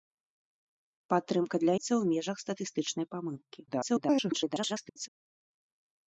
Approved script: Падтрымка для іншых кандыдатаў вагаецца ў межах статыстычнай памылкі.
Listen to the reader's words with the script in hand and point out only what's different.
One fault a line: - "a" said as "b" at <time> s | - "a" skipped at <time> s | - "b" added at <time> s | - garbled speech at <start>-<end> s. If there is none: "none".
- "іншых кандыдатаў вагаецца" skipped at 1.8 s
- garbled speech at 3.7-5.1 s